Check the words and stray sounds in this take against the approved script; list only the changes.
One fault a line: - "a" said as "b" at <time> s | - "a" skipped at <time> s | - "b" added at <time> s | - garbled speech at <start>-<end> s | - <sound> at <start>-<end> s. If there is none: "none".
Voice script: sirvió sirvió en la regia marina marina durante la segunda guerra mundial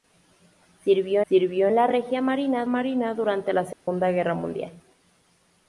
- dropout at 3.7-3.9 s